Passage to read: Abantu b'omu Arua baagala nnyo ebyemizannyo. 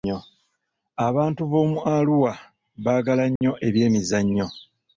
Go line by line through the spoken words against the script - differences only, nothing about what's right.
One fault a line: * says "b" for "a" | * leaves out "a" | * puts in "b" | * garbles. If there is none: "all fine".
all fine